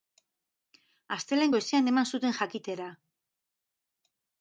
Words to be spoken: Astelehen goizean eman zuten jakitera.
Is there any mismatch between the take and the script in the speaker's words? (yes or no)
no